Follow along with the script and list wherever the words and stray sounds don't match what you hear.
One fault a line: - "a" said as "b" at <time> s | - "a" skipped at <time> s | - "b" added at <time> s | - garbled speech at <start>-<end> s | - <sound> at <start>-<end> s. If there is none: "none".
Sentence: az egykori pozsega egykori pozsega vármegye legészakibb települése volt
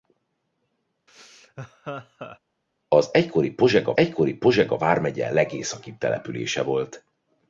- laugh at 1.1-2.4 s